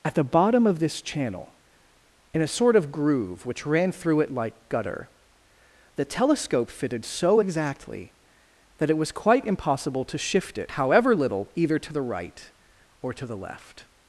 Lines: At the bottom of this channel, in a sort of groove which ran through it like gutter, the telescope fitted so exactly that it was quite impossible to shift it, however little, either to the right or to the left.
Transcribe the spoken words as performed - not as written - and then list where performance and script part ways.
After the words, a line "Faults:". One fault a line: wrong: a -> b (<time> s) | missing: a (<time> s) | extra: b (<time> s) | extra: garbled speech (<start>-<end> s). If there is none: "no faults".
At the bottom of this channel, in a sort of groove which ran through it like gutter, the telescope fitted so exactly that it was quite impossible to shift it, however little, either to the right or to the left.
Faults:
no faults